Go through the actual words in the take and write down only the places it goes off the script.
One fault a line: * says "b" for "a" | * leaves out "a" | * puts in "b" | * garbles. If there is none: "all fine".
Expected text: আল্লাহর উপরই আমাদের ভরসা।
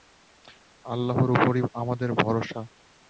all fine